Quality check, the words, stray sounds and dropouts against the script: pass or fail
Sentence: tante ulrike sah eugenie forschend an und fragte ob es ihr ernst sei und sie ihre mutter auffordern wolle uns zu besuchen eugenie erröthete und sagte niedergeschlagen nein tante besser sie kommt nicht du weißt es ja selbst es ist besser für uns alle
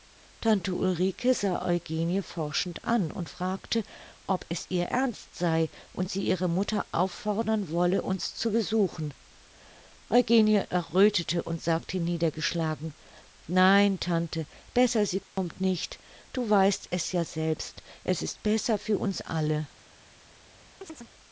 fail